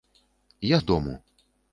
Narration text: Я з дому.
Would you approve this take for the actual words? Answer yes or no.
yes